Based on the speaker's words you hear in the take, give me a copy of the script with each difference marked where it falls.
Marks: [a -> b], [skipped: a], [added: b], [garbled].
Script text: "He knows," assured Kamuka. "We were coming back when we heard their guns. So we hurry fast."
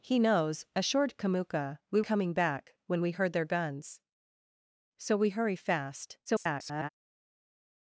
"He knows," assured Kamuka. "We [skipped: were] coming back when we heard their guns. So we hurry fast." [garbled]